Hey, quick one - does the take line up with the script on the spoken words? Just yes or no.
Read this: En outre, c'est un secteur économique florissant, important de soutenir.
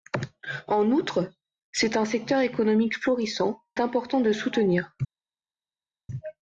yes